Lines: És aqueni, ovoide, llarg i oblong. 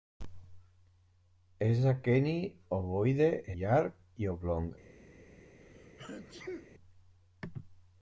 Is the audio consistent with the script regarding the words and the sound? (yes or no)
no